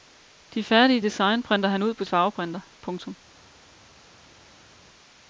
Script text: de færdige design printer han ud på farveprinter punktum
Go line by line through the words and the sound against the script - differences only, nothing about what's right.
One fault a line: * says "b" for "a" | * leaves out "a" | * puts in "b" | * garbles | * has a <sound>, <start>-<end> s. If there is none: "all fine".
all fine